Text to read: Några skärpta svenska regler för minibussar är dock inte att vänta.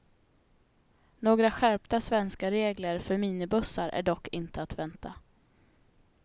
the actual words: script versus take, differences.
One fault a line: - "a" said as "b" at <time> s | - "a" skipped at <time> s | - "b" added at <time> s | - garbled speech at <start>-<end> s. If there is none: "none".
none